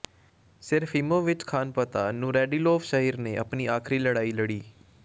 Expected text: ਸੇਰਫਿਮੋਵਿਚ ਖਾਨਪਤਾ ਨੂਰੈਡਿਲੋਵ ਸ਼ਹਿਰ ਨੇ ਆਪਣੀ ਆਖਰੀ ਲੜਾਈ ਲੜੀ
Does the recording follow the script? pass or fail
pass